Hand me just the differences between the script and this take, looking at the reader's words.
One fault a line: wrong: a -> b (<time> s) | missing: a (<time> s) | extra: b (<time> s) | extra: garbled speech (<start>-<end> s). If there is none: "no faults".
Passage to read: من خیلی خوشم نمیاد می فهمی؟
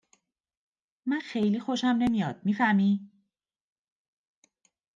no faults